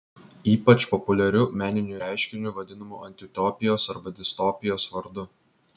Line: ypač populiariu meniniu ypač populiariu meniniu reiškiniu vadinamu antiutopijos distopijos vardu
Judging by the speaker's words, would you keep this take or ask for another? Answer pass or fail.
fail